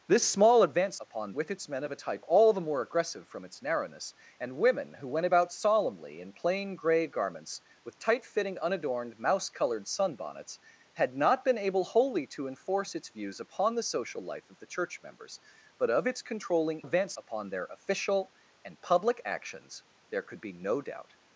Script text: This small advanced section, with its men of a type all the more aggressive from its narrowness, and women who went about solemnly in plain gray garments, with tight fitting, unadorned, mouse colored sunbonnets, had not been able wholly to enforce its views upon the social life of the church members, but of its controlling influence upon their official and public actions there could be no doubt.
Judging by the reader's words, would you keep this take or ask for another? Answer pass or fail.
fail